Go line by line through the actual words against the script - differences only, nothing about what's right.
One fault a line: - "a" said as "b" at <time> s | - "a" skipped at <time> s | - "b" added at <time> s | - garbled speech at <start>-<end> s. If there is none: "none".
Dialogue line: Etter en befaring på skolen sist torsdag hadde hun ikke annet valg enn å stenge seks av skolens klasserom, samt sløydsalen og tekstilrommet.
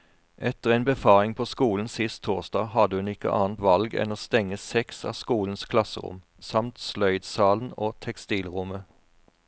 none